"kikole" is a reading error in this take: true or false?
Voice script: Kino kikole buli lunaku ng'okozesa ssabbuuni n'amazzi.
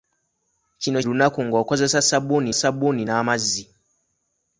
true